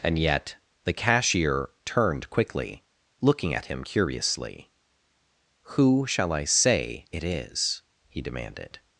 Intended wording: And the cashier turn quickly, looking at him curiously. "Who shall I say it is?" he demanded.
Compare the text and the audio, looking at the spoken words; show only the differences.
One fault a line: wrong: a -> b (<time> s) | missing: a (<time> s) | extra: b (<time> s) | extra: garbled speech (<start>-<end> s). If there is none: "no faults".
extra: yet (0.2 s)
wrong: turn -> turned (1.9 s)